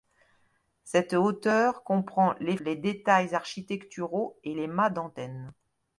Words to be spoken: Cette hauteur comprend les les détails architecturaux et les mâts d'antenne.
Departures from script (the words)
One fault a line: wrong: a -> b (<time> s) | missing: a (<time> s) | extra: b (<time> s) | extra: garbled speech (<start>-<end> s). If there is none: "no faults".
no faults